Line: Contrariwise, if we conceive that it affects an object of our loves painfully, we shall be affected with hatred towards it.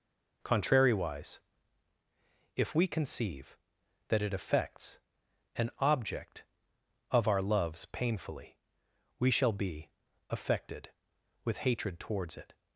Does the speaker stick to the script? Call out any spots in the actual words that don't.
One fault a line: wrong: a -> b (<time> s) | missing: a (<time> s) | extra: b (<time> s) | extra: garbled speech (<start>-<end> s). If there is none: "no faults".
no faults